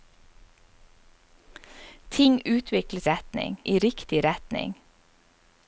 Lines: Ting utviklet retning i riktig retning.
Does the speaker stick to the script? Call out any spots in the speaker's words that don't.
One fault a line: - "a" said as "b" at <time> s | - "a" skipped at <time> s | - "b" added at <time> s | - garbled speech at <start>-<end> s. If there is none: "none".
none